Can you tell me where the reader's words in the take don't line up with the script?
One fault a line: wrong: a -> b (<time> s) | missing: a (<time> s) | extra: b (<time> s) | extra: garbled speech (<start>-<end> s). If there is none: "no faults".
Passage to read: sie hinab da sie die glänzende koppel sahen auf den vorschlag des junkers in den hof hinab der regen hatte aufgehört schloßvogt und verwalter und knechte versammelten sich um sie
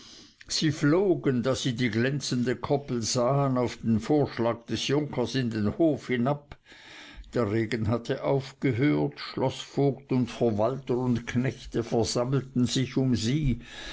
wrong: hinab -> flogen (0.7 s)